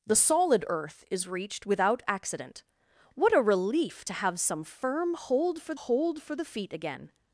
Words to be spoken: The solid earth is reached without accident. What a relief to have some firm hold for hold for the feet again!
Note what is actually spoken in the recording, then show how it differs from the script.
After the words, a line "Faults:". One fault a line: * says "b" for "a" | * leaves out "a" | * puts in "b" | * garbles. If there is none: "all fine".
The solid earth is reached without accident. What a relief to have some firm hold for hold for the feet again!
Faults:
all fine